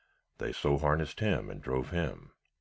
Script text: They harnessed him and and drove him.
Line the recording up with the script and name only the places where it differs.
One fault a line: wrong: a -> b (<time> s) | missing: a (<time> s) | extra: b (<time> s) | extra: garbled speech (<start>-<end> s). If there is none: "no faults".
extra: so (0.5 s)
missing: and (1.6 s)